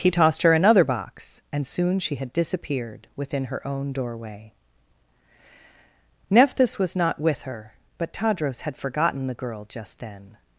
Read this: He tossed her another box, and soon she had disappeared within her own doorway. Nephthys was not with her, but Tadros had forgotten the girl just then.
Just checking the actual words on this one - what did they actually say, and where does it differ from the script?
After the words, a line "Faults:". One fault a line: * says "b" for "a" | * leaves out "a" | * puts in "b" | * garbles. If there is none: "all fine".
He tossed her another box, and soon she had disappeared within her own doorway. Nephthys was not with her, but Tadros had forgotten the girl just then.
Faults:
all fine